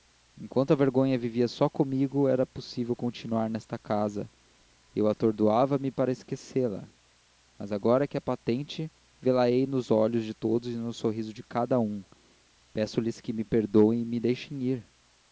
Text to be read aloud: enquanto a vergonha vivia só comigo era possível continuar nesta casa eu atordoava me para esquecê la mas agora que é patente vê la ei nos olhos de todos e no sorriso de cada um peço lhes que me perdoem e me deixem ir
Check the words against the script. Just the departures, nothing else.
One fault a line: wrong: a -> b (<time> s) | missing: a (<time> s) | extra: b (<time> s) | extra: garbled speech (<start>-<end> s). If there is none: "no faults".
no faults